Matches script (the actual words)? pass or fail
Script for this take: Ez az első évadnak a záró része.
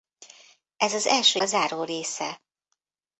fail